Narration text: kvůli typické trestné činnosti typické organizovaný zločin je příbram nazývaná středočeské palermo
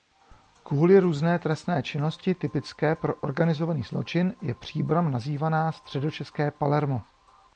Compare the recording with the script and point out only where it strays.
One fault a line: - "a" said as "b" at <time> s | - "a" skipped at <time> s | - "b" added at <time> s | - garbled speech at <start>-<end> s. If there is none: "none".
- "typické" said as "různé" at 1.0 s
- "pro" added at 3.0 s